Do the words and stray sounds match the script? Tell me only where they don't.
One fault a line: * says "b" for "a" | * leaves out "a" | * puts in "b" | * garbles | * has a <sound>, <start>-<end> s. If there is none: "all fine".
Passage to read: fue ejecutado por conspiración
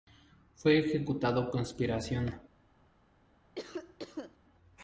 * leaves out "por"
* has a cough, 3.6-4.4 s